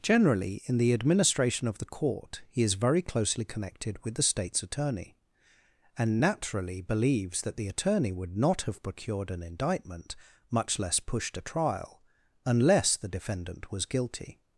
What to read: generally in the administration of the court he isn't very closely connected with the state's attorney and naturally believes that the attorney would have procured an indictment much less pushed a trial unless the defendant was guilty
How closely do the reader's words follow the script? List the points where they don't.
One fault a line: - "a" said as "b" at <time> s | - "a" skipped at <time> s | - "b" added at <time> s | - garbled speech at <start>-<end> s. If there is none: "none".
- "isn't" said as "is" at 2.6 s
- "not" added at 8.4 s